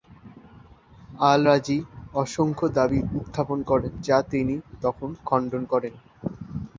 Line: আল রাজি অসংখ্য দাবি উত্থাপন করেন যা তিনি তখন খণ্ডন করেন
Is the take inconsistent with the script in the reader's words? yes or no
no